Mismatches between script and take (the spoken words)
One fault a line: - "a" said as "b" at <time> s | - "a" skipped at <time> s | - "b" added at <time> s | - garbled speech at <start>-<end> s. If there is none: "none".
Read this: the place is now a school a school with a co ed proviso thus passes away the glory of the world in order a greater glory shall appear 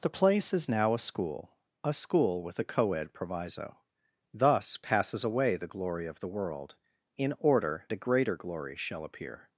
none